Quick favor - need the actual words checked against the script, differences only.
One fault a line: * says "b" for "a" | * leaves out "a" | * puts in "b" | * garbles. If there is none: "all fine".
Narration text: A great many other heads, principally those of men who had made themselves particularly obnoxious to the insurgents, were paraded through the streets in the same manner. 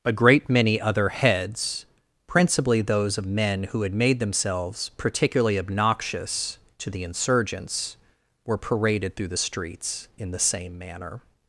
all fine